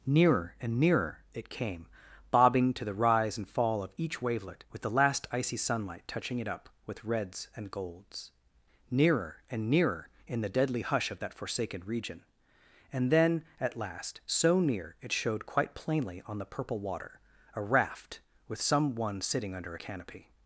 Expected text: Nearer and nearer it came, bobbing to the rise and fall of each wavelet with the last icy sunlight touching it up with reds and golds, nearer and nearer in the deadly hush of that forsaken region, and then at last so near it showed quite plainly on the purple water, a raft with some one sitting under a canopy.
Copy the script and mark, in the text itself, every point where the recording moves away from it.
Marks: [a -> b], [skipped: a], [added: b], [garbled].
Nearer and nearer it came, bobbing to the rise and fall of each wavelet with the last icy sunlight touching it up with reds and golds, nearer and nearer in the deadly hush of that forsaken region, and then at last so near it showed quite plainly on the purple water, a raft with some one sitting under a canopy.